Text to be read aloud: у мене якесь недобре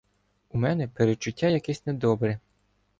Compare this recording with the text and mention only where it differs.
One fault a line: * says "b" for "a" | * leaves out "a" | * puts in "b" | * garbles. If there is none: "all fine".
* puts in "передчуття"